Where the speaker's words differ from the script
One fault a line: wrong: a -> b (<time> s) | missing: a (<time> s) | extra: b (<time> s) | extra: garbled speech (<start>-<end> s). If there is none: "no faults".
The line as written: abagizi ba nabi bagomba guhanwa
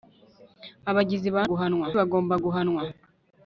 wrong: nabi -> guhanwa (1.5 s)